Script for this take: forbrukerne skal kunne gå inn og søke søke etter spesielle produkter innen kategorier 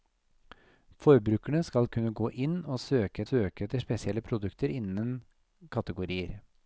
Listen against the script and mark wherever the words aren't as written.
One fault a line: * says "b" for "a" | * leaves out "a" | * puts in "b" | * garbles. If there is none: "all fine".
all fine